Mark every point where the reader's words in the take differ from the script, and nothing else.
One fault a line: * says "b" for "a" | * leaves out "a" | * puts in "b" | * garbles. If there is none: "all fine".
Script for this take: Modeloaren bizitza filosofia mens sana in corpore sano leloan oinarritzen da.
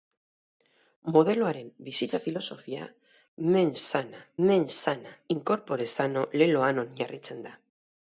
* puts in "mens sana"